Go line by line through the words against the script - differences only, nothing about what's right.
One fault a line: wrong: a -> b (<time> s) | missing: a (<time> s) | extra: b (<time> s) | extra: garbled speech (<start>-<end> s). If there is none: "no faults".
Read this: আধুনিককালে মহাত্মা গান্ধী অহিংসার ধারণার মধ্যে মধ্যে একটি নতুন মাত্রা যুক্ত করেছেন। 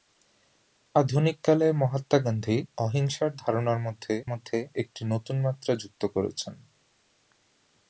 no faults